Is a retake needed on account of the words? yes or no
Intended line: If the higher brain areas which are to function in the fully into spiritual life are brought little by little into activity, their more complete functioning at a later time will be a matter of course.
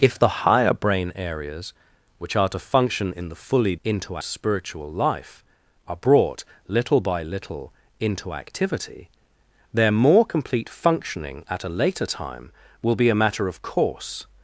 no